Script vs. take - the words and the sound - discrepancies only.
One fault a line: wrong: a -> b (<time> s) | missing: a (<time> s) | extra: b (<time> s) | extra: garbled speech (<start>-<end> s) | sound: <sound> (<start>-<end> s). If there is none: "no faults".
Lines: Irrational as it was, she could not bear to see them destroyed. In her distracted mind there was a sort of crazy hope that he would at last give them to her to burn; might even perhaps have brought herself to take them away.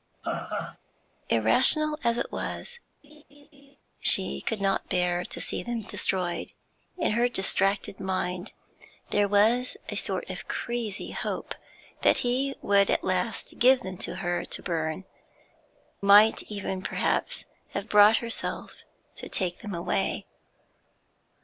sound: laugh (0.2-0.8 s)
sound: laugh (3.0-3.8 s)